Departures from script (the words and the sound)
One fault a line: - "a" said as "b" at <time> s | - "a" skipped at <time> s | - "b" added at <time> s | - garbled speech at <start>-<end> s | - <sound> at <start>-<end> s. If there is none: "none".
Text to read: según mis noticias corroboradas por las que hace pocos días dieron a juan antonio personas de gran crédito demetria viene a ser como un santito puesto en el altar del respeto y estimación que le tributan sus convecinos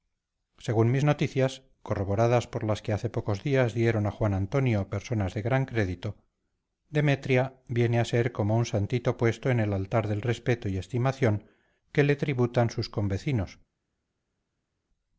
none